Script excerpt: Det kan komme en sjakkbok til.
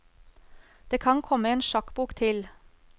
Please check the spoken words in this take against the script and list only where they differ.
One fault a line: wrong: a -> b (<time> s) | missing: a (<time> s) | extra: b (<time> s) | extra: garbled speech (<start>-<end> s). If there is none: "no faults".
no faults